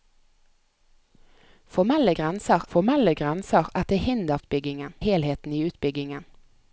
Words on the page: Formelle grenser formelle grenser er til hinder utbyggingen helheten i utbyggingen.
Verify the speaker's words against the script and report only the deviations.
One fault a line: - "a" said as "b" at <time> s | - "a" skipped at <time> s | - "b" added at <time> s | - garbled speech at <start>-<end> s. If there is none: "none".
none